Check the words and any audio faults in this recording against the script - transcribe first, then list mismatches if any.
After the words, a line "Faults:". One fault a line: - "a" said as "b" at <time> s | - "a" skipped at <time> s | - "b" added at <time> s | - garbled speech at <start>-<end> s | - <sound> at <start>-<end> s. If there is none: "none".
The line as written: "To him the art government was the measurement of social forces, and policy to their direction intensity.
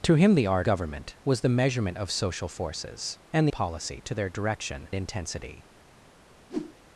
"To him the art government was the measurement of social forces, and policy to their direction intensity.
Faults:
- whoosh at 6.5-6.8 s